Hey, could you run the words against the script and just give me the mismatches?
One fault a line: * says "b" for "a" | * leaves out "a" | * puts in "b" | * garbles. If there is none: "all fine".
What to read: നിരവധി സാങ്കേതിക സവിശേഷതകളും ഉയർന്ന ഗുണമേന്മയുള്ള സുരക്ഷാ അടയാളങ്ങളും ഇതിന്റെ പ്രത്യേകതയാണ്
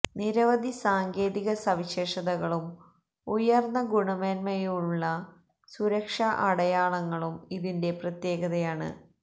all fine